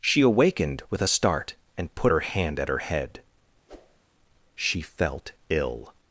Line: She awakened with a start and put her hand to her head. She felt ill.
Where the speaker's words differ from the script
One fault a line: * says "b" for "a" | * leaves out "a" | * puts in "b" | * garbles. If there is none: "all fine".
* says "at" for "to"